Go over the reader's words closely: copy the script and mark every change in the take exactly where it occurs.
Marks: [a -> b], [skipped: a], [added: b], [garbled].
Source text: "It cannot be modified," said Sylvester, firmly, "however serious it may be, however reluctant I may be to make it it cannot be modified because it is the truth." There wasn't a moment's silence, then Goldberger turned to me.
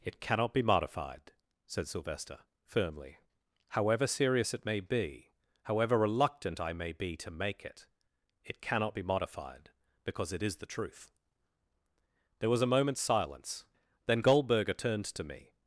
"It cannot be modified," said Sylvester, firmly, "however serious it may be, however reluctant I may be to make it it cannot be modified because it is the truth." There [wasn't -> was] a moment's silence, then Goldberger turned to me.